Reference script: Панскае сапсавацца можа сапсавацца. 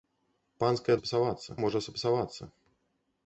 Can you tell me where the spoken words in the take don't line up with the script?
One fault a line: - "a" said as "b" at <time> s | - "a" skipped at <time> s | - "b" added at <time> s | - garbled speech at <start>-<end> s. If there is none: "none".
none